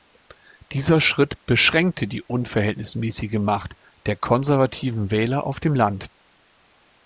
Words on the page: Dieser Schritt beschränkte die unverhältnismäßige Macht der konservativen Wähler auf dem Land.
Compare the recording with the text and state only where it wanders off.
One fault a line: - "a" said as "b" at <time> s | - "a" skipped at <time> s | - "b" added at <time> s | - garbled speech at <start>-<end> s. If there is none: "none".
none